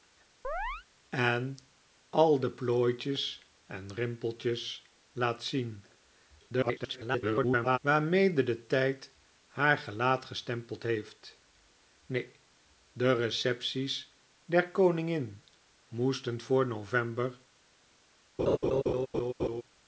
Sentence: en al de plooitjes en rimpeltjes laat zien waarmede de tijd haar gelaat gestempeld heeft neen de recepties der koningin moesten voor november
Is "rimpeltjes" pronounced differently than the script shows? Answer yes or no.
no